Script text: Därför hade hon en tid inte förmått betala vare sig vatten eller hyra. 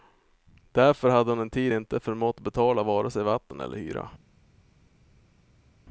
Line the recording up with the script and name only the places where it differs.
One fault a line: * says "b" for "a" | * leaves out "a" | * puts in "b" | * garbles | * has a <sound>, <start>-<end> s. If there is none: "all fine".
all fine